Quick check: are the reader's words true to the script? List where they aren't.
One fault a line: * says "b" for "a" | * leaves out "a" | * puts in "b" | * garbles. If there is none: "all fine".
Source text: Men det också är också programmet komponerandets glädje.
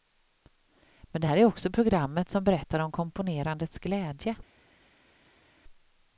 * says "här" for "också"
* puts in "som berättar om"